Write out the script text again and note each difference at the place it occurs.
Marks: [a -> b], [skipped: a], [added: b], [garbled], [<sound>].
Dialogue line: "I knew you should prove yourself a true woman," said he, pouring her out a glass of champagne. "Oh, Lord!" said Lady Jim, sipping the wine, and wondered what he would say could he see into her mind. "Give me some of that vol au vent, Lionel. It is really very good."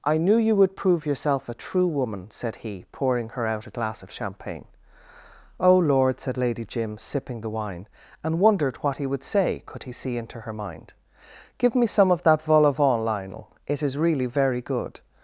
"I knew you [should -> would] prove yourself a true woman," said he, pouring her out a glass of champagne. "Oh, Lord!" said Lady Jim, sipping the wine, and wondered what he would say could he see into her mind. "Give me some of that vol au vent, Lionel. It is really very good."